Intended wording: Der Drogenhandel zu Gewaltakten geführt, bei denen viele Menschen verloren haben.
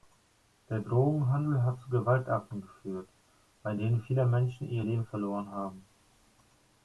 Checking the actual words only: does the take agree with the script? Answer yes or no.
no